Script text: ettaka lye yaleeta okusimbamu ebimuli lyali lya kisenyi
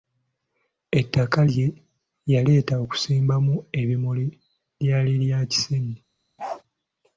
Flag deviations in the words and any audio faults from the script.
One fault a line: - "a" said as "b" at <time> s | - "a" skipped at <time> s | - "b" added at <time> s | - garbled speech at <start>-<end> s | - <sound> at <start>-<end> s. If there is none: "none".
- bark at 6.4-6.6 s